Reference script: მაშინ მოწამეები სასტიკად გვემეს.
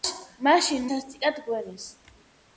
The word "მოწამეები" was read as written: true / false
false